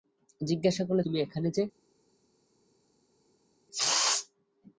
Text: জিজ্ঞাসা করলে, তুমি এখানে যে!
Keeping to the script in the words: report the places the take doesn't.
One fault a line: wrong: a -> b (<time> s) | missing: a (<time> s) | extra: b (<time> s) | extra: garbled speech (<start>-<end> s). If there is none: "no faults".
no faults